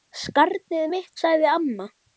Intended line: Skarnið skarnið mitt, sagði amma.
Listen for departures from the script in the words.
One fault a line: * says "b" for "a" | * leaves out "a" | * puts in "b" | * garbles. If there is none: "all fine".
* leaves out "skarnið"